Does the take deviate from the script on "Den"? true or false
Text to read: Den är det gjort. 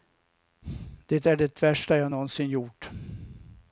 true